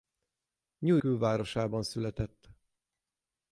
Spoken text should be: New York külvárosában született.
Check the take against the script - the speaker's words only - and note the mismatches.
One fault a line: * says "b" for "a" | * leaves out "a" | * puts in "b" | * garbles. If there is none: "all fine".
* leaves out "York"